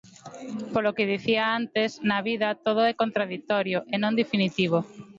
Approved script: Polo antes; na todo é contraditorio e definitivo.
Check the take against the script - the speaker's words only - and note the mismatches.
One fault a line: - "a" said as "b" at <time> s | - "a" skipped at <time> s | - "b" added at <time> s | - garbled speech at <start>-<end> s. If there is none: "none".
- "que dicía" added at 1.0 s
- "vida" added at 2.3 s
- "non" added at 4.0 s